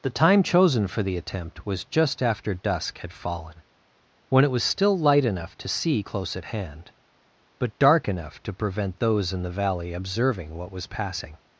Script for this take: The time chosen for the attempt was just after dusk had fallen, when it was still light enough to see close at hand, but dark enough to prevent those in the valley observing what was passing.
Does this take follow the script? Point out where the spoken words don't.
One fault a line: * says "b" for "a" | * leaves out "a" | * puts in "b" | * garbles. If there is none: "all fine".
all fine